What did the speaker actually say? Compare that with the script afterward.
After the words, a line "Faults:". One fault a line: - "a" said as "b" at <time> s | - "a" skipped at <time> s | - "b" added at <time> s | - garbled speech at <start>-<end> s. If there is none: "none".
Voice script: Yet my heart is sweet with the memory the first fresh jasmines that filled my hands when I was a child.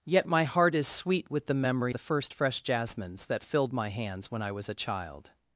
Yet my heart is sweet with the memory the first fresh jasmines that filled my hands when I was a child.
Faults:
none